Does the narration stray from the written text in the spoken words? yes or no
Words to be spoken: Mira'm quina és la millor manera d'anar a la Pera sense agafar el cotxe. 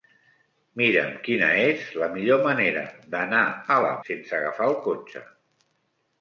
yes